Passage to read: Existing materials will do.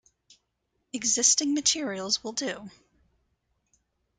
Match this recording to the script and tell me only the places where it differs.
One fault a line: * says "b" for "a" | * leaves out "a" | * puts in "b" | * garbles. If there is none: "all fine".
all fine